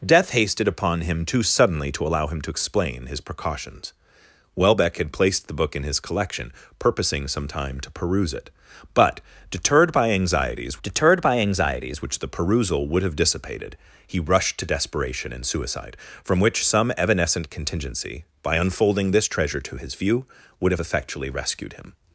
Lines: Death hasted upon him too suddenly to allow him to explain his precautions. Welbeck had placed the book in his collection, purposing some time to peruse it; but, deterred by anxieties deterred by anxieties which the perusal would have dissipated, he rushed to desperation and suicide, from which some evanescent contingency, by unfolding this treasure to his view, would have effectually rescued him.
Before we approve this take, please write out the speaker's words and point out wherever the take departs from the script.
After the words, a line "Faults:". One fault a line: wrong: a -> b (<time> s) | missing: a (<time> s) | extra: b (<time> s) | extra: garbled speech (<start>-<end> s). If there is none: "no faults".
Death hasted upon him too suddenly to allow him to explain his precautions. Welbeck had placed the book in his collection, purposing some time to peruse it; but, deterred by anxieties deterred by anxieties which the perusal would have dissipated, he rushed to desperation and suicide, from which some evanescent contingency, by unfolding this treasure to his view, would have effectually rescued him.
Faults:
no faults